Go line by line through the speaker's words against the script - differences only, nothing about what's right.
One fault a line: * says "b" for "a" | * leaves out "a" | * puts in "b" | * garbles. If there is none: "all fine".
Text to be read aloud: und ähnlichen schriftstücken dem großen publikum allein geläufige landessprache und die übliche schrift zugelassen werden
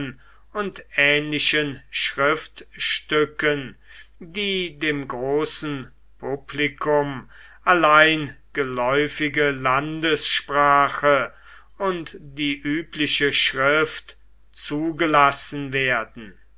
* puts in "die"